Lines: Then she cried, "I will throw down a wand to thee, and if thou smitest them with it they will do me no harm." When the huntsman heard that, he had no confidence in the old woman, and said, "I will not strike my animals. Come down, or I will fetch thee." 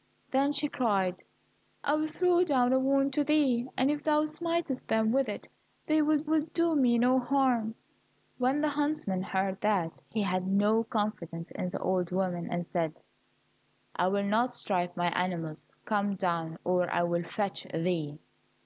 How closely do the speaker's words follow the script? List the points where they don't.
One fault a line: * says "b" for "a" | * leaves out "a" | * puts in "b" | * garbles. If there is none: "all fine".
* puts in "will"